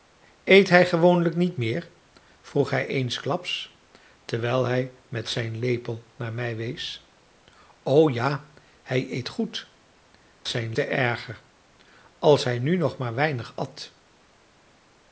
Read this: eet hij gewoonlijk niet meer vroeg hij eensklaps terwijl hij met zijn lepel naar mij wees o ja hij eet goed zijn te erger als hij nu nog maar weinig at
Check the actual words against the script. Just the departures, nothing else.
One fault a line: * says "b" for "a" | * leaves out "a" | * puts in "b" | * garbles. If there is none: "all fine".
all fine